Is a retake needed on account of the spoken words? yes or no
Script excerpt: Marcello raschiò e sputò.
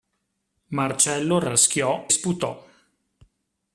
yes